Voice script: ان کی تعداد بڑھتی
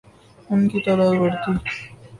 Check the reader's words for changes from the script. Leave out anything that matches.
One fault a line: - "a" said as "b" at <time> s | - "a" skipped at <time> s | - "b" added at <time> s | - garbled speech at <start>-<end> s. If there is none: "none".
none